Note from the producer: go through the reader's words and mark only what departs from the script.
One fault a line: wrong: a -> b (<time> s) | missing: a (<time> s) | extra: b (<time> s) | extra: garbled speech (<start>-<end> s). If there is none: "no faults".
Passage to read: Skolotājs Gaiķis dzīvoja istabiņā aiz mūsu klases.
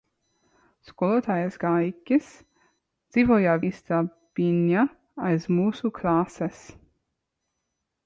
no faults